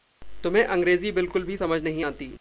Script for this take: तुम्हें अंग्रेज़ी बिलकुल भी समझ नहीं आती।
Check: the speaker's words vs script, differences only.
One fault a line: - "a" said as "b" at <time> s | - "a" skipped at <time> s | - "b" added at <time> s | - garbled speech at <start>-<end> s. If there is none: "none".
none